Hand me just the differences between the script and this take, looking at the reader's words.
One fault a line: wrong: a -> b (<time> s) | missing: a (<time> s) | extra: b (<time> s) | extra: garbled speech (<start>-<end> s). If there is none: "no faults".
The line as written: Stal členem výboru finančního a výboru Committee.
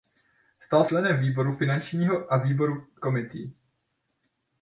no faults